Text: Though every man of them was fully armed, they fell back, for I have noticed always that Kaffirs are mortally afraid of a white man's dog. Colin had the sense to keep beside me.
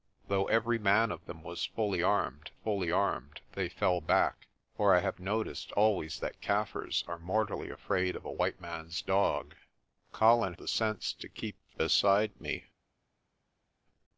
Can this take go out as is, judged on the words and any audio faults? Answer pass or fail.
fail